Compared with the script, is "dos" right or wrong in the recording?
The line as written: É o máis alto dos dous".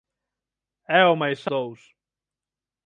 wrong